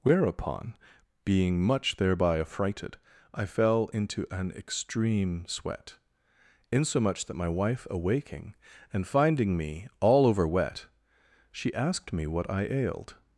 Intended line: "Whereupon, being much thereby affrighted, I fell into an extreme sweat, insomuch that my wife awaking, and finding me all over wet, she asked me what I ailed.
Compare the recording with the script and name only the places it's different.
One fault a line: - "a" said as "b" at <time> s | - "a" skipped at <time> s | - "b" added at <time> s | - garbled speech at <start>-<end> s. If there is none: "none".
none